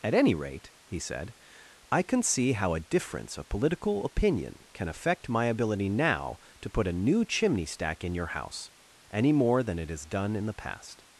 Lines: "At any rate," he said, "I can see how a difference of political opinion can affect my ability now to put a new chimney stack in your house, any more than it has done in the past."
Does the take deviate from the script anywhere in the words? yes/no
no